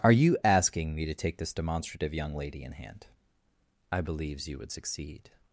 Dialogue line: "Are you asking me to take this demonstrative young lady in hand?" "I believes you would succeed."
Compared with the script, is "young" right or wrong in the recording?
right